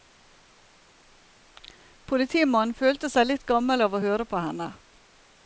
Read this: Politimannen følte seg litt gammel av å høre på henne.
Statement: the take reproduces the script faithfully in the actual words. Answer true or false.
true